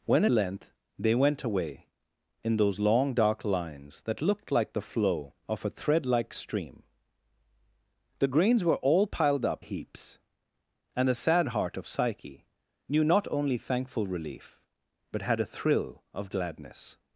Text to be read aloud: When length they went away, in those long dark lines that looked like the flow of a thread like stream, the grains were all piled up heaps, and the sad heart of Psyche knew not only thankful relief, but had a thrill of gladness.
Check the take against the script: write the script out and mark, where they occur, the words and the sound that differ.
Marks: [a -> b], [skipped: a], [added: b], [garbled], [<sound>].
When length they went away, in those long dark lines that looked like the flow of a thread like stream, the grains were all piled up heaps, and the sad heart of Psyche knew not only thankful relief, but had a thrill of gladness.